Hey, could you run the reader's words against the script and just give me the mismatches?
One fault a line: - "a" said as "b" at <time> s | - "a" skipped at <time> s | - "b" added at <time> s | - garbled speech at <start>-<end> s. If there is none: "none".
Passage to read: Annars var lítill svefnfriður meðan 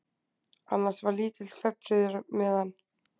none